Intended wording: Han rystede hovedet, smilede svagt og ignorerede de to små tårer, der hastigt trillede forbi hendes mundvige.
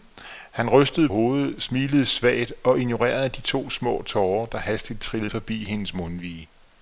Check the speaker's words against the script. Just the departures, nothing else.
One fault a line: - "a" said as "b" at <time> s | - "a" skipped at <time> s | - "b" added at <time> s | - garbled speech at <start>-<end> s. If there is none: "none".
none